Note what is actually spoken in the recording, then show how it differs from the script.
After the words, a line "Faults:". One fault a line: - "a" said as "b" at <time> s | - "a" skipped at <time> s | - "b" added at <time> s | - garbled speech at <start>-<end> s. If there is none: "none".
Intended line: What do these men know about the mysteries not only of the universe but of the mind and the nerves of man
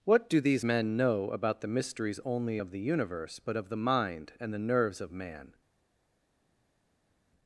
What do these men know about the mysteries only of the universe but of the mind and the nerves of man
Faults:
- "not" skipped at 2.2 s